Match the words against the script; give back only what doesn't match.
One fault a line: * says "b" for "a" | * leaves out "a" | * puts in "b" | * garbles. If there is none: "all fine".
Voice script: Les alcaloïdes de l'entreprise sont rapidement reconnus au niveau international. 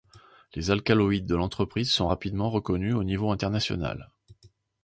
all fine